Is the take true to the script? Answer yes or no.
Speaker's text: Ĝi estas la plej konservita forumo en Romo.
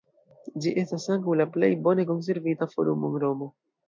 no